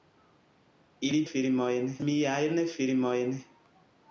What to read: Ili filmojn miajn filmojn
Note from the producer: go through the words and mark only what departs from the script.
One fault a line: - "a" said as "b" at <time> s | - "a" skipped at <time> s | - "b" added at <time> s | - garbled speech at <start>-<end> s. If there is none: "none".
none